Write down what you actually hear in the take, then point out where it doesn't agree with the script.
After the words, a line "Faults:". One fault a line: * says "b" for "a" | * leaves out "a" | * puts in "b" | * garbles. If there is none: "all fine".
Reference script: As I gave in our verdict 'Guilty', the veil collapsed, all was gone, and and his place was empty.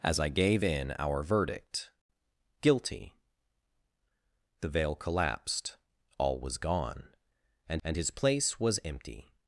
As I gave in our verdict 'Guilty', the veil collapsed, all was gone, and and his place was empty.
Faults:
all fine